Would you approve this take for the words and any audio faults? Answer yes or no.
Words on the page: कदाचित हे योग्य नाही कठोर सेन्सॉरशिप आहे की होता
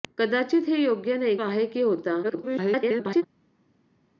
no